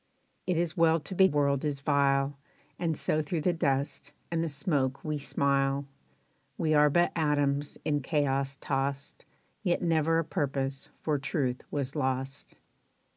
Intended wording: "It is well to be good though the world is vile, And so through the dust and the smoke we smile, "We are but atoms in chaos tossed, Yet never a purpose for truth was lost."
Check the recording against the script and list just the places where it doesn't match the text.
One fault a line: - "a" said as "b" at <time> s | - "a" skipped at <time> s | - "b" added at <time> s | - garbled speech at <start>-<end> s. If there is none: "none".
- "good though the" skipped at 1.3 s